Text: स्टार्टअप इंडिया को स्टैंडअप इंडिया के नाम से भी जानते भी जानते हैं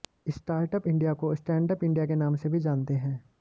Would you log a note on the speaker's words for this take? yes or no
yes